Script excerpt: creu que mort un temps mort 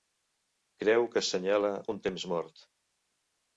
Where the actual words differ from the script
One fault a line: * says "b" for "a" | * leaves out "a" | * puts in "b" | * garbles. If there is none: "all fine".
* says "assenyala" for "mort"